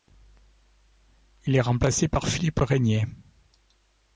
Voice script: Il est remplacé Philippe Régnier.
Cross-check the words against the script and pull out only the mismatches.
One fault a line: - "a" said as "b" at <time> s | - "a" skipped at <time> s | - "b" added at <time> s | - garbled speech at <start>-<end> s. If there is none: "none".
- "par" added at 2.1 s